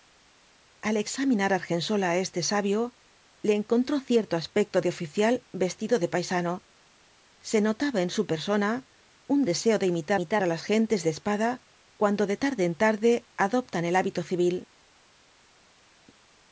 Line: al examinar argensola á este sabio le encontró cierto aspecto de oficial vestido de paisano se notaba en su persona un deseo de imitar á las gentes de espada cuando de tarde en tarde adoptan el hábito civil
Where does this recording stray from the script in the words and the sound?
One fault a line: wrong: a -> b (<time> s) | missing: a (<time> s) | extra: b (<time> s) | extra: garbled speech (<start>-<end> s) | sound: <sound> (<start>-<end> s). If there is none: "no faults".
extra: imitar (10.2 s)